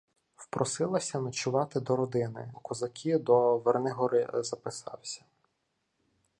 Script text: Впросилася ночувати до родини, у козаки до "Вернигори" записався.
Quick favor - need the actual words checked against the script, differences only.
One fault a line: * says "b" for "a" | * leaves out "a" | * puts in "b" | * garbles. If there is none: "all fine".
all fine